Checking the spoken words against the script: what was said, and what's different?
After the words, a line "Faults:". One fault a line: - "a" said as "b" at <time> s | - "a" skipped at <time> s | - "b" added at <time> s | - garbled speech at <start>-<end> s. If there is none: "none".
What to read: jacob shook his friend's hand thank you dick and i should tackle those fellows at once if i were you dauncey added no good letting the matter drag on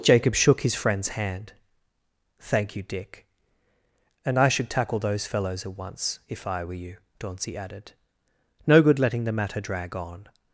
jacob shook his friend's hand thank you dick and i should tackle those fellows at once if i were you dauncey added no good letting the matter drag on
Faults:
none